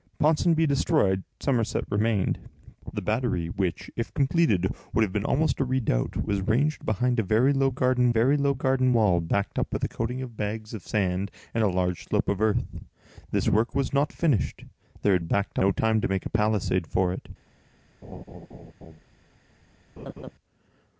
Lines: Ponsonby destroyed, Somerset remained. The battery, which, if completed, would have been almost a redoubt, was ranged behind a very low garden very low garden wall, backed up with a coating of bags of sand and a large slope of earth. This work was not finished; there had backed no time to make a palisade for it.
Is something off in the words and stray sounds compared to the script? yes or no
yes